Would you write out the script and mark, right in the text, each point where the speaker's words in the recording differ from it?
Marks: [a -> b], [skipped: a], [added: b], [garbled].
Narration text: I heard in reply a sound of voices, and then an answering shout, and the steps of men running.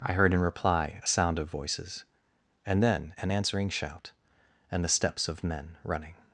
I heard in reply a sound of voices, and then an answering shout, and the steps of men running.